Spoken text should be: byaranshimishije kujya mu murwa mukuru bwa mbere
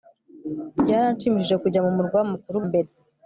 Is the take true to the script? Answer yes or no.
no